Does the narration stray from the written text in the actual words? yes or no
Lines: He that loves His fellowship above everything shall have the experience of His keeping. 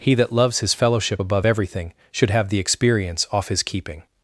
yes